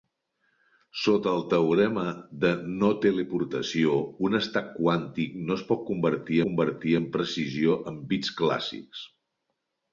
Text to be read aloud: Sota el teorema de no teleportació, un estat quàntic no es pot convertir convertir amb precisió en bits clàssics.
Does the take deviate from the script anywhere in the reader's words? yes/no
no